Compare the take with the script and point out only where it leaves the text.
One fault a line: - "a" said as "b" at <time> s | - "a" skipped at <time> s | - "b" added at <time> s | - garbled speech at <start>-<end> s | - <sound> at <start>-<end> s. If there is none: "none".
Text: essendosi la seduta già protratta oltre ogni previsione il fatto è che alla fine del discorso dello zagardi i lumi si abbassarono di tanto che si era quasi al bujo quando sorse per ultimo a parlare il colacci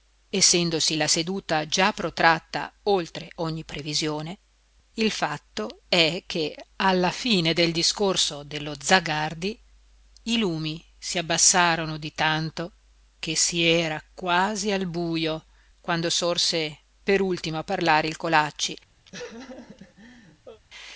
- laugh at 19.1-20.6 s